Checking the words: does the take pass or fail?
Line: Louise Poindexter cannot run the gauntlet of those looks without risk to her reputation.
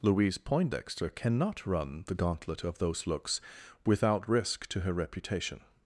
pass